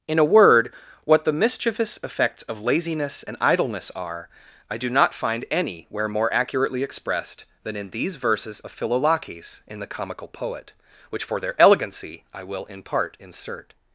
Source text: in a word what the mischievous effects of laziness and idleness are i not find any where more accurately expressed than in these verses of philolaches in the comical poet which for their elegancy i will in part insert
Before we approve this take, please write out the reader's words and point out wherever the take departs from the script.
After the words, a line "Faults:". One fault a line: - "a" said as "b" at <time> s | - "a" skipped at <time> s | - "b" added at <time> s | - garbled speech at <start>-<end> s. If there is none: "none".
in a word what the mischievous effects of laziness and idleness are i do not find any where more accurately expressed than in these verses of philolaches in the comical poet which for their elegancy i will in part insert
Faults:
- "do" added at 4.8 s